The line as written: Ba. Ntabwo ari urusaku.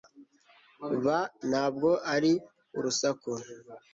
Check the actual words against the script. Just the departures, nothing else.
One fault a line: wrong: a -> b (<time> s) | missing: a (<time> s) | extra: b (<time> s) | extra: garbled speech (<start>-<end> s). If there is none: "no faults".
no faults